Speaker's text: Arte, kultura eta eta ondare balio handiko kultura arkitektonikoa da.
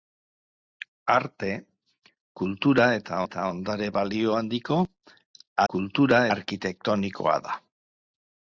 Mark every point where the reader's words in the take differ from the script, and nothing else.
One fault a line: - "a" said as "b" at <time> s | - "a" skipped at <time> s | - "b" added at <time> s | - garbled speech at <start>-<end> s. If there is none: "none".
none